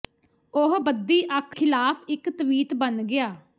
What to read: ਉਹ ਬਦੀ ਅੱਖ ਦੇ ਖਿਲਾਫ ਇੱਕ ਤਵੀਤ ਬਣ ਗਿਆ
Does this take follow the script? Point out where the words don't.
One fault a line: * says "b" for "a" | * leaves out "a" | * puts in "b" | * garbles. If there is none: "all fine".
* leaves out "ਦੇ"